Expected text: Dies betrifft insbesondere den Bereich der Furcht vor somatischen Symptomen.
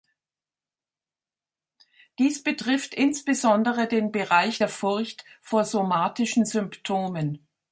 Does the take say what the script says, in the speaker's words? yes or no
yes